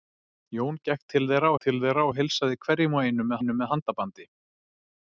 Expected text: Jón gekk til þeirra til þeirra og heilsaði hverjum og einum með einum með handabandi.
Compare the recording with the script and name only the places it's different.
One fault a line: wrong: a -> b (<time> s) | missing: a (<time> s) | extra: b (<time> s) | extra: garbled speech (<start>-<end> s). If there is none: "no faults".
no faults